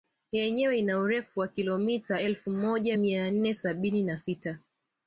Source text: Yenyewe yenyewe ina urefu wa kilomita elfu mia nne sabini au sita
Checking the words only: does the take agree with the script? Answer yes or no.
no